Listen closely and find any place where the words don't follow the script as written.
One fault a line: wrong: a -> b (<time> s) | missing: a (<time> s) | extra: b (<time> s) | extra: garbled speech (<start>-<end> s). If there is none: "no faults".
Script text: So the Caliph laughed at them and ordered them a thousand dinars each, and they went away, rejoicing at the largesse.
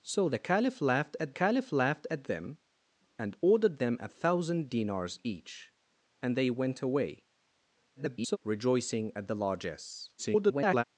extra: Caliph laughed at (1.3 s)
extra: garbled speech (7.9-8.4 s)
extra: garbled speech (10.2-10.8 s)